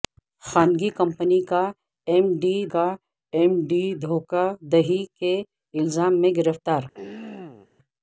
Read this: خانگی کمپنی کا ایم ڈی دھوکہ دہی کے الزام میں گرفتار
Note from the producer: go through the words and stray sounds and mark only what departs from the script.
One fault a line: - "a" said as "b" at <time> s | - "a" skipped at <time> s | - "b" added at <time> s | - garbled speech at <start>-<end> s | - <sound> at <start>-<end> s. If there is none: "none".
- "کا ایم ڈی" added at 2.7 s
- throat clearing at 6.9-7.7 s